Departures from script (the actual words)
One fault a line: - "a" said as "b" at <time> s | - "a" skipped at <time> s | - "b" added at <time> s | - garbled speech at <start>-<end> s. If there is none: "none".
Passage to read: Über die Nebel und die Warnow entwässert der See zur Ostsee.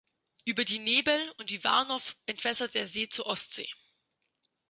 none